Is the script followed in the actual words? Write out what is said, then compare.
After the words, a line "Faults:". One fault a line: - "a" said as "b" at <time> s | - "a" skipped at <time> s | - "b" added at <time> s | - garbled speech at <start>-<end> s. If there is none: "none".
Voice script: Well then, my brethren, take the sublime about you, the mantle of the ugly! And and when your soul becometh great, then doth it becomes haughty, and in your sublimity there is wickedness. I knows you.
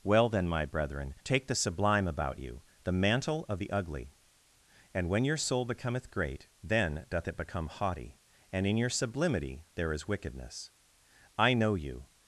Well then, my brethren, take the sublime about you, the mantle of the ugly! And when your soul becometh great, then doth it become haughty, and in your sublimity there is wickedness. I know you.
Faults:
- "and" skipped at 5.1 s
- "becomes" said as "become" at 7.3 s
- "knows" said as "know" at 11.5 s